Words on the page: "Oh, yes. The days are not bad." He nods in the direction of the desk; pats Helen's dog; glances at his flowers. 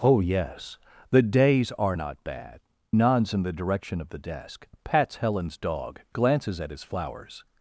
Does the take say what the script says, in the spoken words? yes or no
no